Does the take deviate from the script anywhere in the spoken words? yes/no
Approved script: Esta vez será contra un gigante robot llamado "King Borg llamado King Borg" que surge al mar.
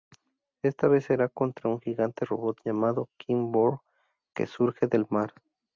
yes